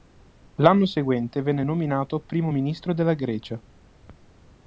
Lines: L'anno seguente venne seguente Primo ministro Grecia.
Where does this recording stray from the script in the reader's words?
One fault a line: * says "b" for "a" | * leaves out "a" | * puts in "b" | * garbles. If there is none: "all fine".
* says "nominato" for "seguente"
* puts in "della"